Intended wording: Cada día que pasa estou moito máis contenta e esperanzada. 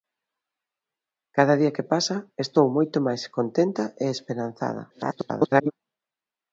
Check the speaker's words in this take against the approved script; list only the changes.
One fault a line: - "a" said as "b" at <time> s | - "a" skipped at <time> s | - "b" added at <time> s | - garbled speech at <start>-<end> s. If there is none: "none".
- garbled speech at 4.9-5.7 s